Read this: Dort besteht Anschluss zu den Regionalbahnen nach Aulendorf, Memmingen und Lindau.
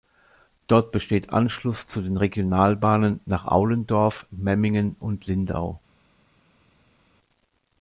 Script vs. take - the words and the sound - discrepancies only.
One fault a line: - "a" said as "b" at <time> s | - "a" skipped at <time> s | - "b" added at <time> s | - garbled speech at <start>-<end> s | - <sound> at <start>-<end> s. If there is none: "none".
none